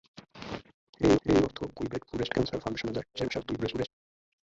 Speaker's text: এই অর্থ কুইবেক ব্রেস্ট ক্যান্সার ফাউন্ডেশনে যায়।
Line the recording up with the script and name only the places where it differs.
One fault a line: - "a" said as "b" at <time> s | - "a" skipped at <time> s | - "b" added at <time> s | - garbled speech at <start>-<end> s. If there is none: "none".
- "এই" added at 1.3 s
- garbled speech at 3.1-3.9 s